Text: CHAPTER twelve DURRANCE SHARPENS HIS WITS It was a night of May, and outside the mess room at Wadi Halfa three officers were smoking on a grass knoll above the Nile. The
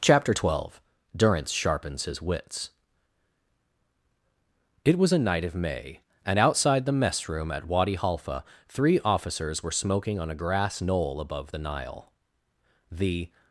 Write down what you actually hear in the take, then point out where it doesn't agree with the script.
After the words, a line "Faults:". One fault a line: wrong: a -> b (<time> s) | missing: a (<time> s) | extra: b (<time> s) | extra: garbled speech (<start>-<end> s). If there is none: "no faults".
CHAPTER twelve DURRANCE SHARPENS HIS WITS It was a night of May, and outside the mess room at Wadi Halfa three officers were smoking on a grass knoll above the Nile. The
Faults:
no faults